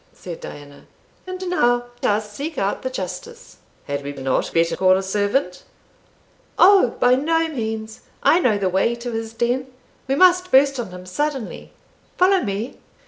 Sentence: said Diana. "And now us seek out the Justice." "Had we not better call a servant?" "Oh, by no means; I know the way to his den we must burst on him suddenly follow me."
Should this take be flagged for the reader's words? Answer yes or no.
no